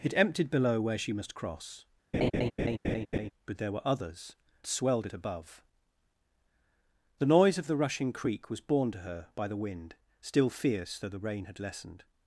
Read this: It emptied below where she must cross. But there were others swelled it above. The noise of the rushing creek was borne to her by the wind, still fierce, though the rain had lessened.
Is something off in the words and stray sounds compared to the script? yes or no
yes